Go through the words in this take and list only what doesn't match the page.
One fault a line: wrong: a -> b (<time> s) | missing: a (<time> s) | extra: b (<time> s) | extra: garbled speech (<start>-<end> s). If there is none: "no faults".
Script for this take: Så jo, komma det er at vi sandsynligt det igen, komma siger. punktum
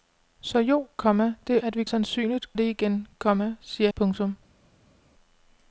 no faults